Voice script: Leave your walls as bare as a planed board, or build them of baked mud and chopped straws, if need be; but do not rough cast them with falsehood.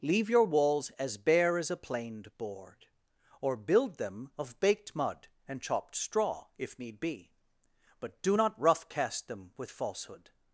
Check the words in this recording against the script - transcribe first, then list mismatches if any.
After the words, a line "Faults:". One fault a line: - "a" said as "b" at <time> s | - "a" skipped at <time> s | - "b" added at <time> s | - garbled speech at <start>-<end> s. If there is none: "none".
Leave your walls as bare as a planed board, or build them of baked mud and chopped straw, if need be; but do not rough cast them with falsehood.
Faults:
- "straws" said as "straw" at 6.0 s